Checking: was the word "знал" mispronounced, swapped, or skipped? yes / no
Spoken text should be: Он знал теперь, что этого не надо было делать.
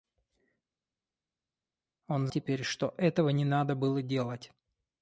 yes